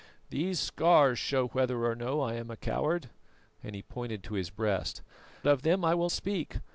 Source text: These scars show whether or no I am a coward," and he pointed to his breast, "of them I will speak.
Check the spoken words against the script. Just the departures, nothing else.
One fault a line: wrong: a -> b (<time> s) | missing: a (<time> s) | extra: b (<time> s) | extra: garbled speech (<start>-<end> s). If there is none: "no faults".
no faults